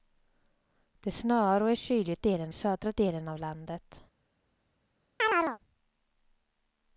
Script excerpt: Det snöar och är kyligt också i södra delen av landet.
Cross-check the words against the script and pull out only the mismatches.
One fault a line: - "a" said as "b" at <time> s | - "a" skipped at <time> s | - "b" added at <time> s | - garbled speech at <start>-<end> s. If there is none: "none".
- "också" said as "delen" at 2.2 s